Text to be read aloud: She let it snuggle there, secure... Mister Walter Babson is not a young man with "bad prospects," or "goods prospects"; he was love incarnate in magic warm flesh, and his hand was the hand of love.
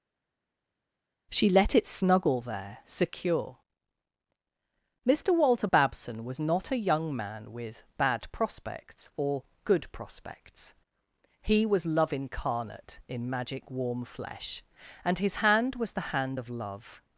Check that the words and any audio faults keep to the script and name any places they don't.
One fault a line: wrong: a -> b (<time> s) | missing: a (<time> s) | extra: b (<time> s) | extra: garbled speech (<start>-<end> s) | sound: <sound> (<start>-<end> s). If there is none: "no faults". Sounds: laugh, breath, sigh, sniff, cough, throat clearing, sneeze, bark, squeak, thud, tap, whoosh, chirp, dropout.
wrong: is -> was (6.2 s)
wrong: goods -> good (9.6 s)